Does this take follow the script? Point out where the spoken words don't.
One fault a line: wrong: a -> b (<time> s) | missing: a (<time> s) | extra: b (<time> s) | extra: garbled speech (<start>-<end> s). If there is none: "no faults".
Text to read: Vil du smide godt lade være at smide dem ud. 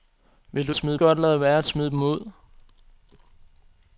no faults